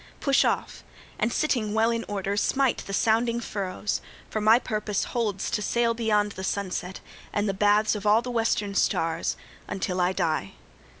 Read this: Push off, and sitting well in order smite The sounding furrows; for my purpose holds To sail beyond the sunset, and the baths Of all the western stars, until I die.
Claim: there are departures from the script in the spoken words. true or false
false